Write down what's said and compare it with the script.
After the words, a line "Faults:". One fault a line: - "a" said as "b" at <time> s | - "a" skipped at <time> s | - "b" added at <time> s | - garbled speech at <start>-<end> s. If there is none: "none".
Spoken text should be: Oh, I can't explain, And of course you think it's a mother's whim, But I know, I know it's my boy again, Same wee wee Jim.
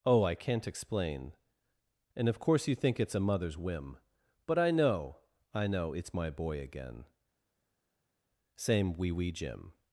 Oh, I can't explain, And of course you think it's a mother's whim, But I know, I know it's my boy again, Same wee wee Jim.
Faults:
none